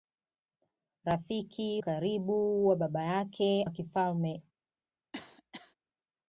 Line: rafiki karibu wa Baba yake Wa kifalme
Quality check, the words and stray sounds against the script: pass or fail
fail